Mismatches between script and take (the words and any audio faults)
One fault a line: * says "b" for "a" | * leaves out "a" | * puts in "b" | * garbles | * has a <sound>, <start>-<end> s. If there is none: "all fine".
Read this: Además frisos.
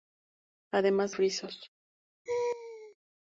* has a laugh, 2.3-3.0 s